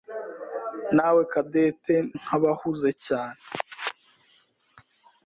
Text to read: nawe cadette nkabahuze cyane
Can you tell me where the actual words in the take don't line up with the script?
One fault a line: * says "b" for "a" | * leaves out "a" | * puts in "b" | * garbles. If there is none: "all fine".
all fine